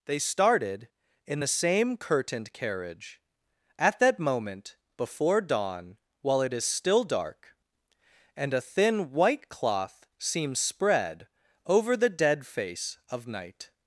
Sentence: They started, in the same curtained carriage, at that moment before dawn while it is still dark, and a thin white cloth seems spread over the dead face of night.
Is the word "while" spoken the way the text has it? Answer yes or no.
yes